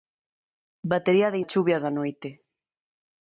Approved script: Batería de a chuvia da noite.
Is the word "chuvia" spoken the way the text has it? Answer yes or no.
yes